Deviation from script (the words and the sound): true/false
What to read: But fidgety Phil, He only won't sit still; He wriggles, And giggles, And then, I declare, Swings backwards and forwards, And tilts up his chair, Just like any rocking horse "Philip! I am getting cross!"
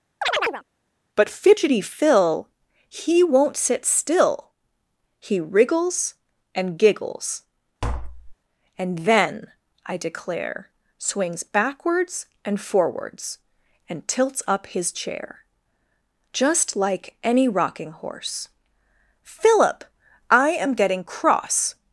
true